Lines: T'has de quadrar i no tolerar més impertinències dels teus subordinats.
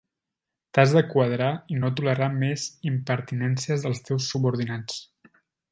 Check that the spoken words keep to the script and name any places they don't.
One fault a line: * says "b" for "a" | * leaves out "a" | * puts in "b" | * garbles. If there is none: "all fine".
all fine